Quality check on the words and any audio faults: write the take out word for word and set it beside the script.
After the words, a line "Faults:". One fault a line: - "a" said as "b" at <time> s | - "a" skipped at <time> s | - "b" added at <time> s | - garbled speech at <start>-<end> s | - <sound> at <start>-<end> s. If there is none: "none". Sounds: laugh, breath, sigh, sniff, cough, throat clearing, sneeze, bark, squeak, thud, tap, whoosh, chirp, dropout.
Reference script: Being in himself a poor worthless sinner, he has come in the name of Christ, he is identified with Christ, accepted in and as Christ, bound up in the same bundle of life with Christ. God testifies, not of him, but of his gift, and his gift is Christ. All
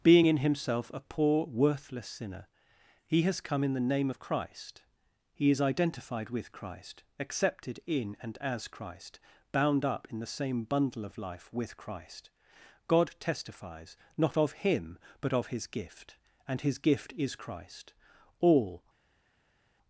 Being in himself a poor worthless sinner, he has come in the name of Christ, he is identified with Christ, accepted in and as Christ, bound up in the same bundle of life with Christ. God testifies, not of him, but of his gift, and his gift is Christ. All
Faults:
none